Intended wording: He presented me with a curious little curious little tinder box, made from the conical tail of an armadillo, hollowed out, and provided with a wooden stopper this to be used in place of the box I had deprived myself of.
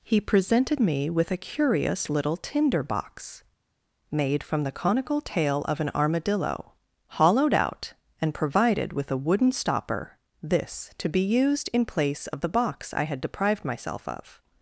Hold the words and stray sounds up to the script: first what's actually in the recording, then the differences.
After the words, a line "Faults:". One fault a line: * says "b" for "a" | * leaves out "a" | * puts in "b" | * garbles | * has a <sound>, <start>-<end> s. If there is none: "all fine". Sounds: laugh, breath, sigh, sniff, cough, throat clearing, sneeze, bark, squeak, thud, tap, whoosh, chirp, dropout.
He presented me with a curious little tinder box, made from the conical tail of an armadillo, hollowed out, and provided with a wooden stopper this to be used in place of the box I had deprived myself of.
Faults:
* leaves out "curious little"